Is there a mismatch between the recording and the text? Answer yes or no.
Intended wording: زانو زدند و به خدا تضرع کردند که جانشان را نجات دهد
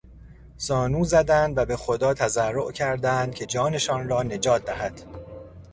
no